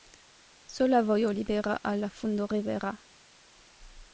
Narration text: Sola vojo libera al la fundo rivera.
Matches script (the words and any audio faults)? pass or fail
pass